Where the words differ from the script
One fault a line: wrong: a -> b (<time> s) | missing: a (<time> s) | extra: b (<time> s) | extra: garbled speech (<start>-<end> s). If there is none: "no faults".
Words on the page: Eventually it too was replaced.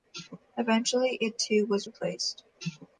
no faults